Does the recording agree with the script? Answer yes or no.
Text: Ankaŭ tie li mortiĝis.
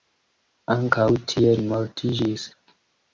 yes